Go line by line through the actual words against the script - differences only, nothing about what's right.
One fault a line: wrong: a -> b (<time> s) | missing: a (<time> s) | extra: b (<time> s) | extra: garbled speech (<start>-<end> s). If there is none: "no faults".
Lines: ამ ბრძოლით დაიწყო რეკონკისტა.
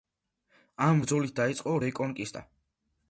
no faults